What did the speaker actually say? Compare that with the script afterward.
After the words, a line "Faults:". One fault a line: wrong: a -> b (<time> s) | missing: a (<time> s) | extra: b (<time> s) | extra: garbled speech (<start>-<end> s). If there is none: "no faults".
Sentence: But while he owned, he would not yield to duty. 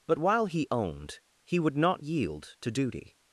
But while he owned, he would not yield to duty.
Faults:
no faults